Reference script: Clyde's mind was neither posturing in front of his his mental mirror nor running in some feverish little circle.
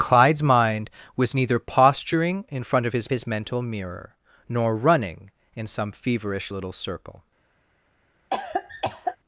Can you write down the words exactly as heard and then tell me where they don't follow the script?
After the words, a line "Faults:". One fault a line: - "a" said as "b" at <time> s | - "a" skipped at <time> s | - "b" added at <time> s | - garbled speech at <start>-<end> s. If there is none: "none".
Clyde's mind was neither posturing in front of his his mental mirror nor running in some feverish little circle.
Faults:
none